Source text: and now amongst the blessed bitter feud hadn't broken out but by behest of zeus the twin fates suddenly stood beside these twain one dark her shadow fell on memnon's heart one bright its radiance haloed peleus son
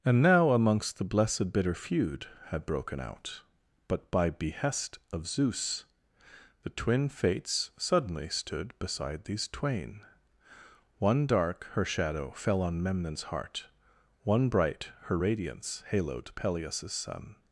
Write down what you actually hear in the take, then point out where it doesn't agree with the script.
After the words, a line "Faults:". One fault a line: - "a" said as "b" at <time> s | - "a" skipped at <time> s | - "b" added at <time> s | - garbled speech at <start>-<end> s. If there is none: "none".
and now amongst the blessed bitter feud had broken out but by behest of zeus the twin fates suddenly stood beside these twain one dark her shadow fell on memnon's heart one bright her radiance haloed peleus son
Faults:
- "hadn't" said as "had" at 2.5 s
- "its" said as "her" at 15.1 s